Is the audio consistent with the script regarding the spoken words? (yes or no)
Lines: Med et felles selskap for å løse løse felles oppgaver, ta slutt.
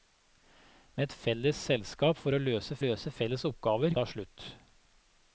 yes